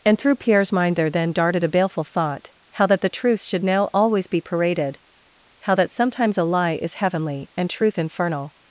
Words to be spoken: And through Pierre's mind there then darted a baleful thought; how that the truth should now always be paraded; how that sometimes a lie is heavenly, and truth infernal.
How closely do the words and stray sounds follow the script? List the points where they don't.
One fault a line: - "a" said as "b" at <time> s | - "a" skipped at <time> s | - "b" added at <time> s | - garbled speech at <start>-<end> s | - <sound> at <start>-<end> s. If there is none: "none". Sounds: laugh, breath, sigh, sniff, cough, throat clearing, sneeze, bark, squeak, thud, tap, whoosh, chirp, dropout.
none